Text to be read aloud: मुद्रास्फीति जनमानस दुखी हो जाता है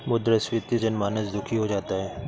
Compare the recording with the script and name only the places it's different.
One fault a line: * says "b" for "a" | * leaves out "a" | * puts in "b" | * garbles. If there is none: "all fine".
all fine